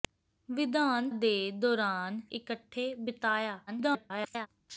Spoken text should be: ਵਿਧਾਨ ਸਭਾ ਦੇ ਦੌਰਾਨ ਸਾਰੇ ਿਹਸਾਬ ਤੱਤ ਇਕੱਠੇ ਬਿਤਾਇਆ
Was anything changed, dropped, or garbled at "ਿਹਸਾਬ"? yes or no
yes